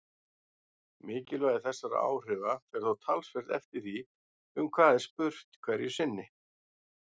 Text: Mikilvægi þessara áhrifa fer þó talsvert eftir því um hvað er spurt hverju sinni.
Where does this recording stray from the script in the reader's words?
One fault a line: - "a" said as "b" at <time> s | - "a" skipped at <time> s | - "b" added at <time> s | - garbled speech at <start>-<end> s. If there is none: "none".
none